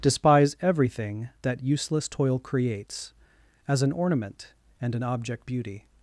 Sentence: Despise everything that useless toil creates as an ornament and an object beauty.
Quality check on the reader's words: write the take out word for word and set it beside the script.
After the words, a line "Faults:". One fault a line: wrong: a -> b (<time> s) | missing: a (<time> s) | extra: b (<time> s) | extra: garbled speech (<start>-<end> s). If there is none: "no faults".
Despise everything that useless toil creates as an ornament and an object beauty.
Faults:
no faults